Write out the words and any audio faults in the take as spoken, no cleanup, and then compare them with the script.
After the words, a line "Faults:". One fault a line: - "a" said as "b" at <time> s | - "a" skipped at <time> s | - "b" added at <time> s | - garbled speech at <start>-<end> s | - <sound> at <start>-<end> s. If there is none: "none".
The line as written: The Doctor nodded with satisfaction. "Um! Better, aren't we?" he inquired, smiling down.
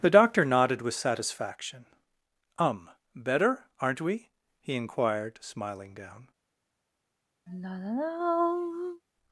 The Doctor nodded with satisfaction. "Um! Better, aren't we?" he inquired, smiling down.
Faults:
- sigh at 7.5-9.0 s